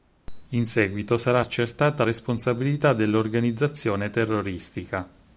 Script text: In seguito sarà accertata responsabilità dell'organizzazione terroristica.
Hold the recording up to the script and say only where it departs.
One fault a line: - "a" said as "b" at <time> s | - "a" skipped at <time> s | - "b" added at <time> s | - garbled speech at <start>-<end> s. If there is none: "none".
none